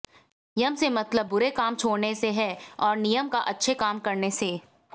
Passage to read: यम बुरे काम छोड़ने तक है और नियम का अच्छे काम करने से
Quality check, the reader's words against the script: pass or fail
fail